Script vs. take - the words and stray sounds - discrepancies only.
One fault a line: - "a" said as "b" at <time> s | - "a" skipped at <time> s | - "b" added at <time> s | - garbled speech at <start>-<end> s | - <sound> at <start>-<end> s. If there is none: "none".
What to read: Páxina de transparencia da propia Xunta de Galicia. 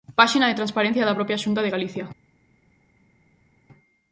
none